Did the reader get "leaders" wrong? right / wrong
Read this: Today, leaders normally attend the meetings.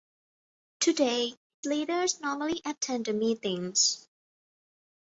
right